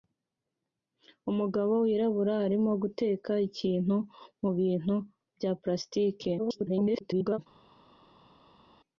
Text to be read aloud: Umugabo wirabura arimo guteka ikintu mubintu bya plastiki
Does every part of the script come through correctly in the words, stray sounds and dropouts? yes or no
no